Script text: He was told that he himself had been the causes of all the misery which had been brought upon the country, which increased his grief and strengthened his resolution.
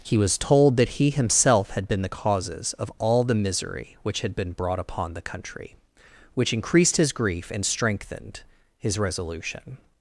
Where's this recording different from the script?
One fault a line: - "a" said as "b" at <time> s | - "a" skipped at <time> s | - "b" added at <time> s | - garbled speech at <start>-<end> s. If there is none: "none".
none